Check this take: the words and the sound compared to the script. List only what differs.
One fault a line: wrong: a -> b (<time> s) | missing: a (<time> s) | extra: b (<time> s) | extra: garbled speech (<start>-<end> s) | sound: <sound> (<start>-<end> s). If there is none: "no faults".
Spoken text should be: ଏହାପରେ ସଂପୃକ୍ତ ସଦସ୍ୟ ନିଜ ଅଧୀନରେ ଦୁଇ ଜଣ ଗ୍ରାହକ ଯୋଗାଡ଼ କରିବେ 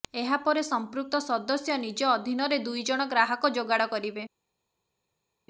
no faults